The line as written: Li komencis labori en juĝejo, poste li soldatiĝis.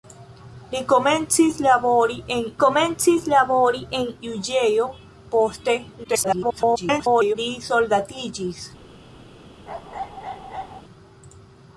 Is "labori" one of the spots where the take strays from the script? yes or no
no